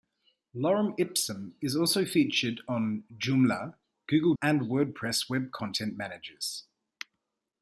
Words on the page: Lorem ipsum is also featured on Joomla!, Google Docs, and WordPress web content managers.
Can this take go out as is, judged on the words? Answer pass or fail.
fail